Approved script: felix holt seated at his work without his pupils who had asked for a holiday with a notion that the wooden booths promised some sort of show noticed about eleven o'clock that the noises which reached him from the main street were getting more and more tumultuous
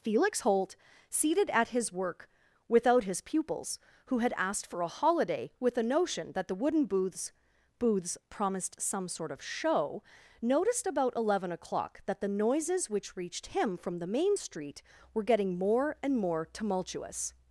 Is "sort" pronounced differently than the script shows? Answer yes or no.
no